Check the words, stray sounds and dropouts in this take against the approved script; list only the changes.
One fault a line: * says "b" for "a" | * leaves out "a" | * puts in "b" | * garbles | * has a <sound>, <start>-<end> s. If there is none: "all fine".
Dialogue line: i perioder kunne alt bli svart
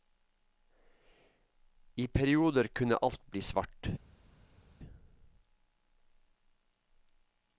all fine